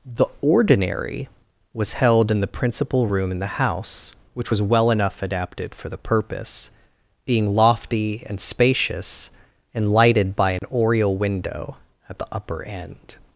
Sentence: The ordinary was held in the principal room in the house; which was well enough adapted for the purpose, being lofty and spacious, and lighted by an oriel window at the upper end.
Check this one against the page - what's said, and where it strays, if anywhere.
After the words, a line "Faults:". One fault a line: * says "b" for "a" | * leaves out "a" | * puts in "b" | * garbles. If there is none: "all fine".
The ordinary was held in the principal room in the house; which was well enough adapted for the purpose, being lofty and spacious, and lighted by an oriel window at the upper end.
Faults:
all fine